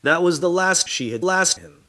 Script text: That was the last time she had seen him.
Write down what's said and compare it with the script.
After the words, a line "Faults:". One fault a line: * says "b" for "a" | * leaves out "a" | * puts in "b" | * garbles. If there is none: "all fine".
That was the last she had last him.
Faults:
* leaves out "time"
* says "last" for "seen"